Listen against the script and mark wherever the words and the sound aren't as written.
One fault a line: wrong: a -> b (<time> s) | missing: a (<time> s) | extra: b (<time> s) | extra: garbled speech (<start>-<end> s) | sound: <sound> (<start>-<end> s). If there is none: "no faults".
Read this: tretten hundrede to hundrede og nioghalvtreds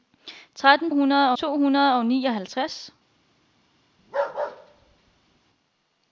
sound: bark (4.0-5.4 s)